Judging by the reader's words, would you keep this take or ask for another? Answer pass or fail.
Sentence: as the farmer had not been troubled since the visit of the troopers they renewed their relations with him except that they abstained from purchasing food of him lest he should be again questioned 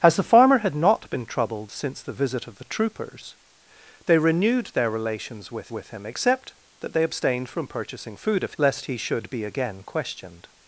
fail